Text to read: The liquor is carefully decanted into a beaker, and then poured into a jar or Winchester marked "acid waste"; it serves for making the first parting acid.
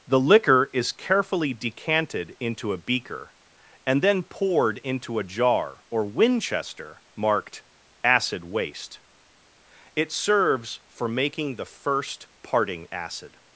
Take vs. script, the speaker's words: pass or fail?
pass